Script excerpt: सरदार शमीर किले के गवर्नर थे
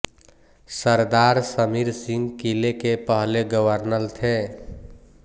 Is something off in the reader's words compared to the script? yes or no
yes